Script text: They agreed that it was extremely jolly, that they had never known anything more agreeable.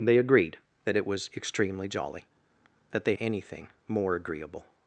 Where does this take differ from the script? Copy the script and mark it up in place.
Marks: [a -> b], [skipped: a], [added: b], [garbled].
They agreed that it was extremely jolly, that they [skipped: had never known] anything more agreeable.